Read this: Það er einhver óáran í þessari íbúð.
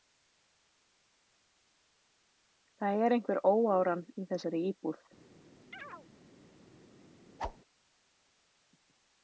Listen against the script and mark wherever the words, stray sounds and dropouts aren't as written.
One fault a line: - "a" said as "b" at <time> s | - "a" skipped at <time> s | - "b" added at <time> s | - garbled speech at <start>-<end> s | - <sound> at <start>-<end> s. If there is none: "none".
- chirp at 5.7-6.1 s
- whoosh at 7.4-7.6 s